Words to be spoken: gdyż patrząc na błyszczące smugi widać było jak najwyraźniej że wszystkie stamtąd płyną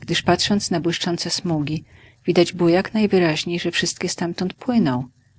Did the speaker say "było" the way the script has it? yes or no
yes